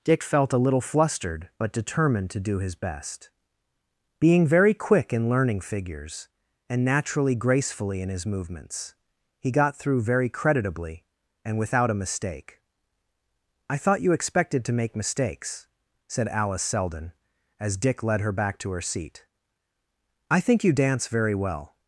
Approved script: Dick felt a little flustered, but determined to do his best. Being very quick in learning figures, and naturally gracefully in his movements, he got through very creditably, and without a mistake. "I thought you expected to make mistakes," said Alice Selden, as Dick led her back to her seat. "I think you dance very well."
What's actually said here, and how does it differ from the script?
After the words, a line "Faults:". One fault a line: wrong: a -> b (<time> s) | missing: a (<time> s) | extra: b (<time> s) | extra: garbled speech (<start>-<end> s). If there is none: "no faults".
Dick felt a little flustered, but determined to do his best. Being very quick in learning figures, and naturally gracefully in his movements, he got through very creditably, and without a mistake. "I thought you expected to make mistakes," said Alice Selden, as Dick led her back to her seat. "I think you dance very well."
Faults:
no faults